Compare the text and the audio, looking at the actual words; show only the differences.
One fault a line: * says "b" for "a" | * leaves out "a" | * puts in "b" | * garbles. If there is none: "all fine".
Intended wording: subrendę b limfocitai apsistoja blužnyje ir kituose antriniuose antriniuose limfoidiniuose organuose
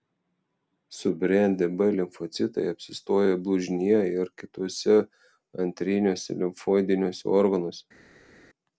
* leaves out "antriniuose"